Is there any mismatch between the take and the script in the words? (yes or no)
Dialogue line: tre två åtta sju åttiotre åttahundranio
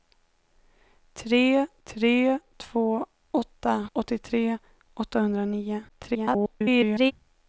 yes